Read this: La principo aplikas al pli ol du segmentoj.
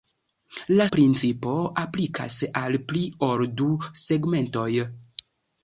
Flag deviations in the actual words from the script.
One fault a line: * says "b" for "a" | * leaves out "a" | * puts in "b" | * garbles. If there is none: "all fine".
all fine